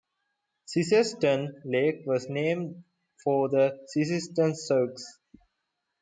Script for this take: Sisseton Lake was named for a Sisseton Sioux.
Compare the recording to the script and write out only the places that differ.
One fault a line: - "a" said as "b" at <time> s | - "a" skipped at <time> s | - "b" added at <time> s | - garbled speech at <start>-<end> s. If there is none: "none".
- "a" said as "the" at 3.5 s